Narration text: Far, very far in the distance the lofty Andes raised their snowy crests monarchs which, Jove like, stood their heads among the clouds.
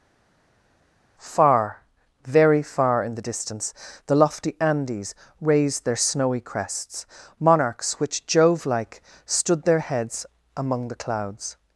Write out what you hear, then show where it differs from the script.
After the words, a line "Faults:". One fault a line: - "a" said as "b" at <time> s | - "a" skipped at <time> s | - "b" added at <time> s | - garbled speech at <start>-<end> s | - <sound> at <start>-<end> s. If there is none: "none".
Far, very far in the distance the lofty Andes raised their snowy crests monarchs which, Jove like, stood their heads among the clouds.
Faults:
none